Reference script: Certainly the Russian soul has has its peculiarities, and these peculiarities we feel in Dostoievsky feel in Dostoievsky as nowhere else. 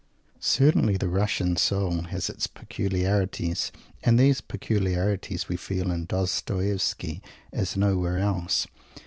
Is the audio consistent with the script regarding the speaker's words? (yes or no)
no